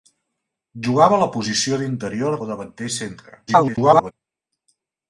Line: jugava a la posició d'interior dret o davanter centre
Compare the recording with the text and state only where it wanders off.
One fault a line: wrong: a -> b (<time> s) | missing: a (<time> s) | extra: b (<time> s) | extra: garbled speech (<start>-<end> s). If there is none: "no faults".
missing: dret (2.4 s)
extra: garbled speech (3.5-4.1 s)